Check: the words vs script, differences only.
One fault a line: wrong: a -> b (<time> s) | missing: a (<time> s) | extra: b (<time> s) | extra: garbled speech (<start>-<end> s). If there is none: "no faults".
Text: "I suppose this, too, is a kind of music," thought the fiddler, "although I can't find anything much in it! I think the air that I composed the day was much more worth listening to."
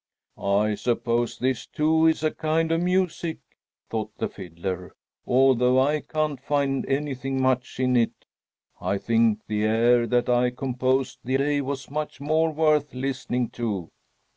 no faults